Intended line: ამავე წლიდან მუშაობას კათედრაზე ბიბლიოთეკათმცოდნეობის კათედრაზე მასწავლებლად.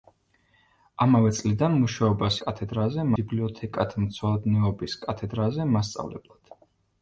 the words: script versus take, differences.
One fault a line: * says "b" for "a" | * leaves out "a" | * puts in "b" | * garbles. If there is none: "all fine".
all fine